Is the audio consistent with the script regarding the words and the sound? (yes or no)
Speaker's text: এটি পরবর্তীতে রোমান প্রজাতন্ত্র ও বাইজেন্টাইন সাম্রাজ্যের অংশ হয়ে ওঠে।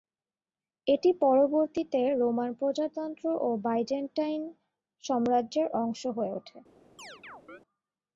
no